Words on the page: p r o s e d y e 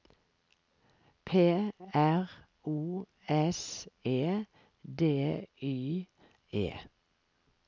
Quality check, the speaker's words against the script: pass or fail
pass